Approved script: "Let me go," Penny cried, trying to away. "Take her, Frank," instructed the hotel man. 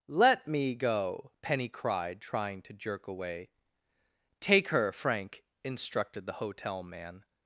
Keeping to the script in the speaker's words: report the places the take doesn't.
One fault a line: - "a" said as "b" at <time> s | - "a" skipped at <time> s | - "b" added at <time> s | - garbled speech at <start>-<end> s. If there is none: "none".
- "jerk" added at 2.7 s